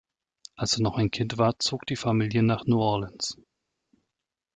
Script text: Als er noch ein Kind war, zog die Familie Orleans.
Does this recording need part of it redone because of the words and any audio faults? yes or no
yes